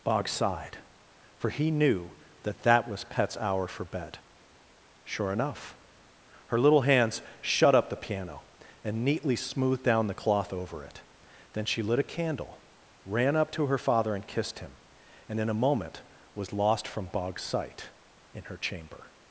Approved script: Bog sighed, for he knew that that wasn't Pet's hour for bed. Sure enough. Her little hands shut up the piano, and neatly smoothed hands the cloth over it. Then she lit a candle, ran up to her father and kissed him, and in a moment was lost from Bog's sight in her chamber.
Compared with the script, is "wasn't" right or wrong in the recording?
wrong